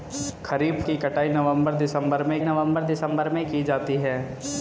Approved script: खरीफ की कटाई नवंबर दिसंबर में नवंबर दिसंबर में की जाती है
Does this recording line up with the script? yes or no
yes